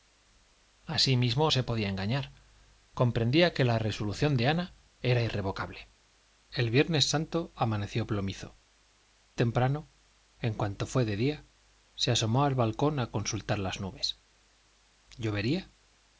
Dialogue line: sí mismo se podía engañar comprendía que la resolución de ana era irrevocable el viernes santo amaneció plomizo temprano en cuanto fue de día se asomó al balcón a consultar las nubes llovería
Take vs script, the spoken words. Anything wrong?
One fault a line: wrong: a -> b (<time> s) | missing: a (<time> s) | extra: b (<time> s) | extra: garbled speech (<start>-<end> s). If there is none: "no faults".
no faults